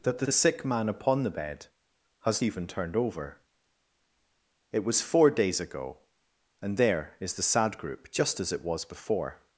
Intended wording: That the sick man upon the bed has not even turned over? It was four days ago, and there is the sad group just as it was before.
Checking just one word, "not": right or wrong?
wrong